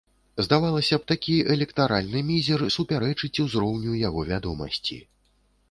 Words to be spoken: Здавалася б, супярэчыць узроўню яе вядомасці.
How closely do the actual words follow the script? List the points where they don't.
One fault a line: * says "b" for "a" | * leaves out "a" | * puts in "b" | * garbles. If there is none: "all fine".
* puts in "такі электаральны мізер"
* says "яго" for "яе"